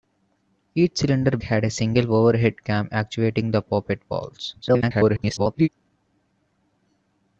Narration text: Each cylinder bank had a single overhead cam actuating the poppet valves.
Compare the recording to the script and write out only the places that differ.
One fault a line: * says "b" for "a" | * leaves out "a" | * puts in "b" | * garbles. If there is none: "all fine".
* leaves out "bank"
* garbles